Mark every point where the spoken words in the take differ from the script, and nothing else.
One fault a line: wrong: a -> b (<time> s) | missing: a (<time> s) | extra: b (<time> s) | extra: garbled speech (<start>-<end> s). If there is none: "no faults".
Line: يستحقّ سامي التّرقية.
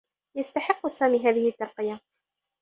extra: هذه (1.3 s)